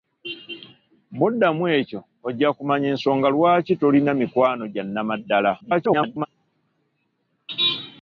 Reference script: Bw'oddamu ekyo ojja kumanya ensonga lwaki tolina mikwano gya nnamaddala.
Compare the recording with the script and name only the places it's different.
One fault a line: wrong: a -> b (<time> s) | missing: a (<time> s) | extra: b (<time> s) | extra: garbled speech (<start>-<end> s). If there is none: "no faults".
extra: garbled speech (5.6-6.3 s)